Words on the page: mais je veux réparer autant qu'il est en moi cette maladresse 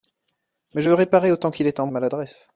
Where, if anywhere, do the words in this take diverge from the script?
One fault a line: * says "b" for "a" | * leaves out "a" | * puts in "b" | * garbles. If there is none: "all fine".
* leaves out "moi cette"